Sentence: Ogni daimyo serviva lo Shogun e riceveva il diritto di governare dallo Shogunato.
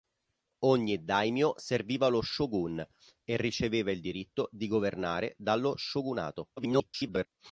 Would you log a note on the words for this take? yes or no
yes